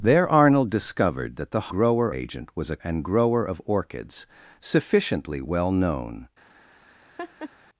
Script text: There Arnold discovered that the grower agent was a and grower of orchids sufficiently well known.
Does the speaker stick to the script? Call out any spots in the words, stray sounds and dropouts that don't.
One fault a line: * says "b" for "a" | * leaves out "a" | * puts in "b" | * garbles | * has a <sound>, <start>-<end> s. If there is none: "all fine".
* has a laugh, 7.2-7.5 s